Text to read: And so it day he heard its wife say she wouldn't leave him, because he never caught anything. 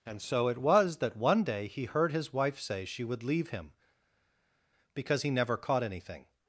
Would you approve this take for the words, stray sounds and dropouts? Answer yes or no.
no